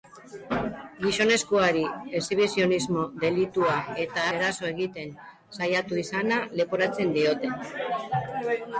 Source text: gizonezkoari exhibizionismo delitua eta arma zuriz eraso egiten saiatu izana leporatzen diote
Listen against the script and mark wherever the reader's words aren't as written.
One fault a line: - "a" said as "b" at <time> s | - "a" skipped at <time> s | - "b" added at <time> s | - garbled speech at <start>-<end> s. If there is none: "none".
- "arma zuriz" skipped at 4.2 s